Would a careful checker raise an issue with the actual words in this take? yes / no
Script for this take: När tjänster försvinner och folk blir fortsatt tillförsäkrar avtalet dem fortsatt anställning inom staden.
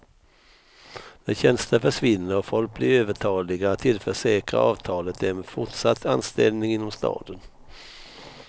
yes